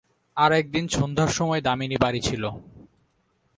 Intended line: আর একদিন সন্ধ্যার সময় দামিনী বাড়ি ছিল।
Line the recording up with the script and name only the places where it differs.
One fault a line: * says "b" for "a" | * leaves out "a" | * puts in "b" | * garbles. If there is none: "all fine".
all fine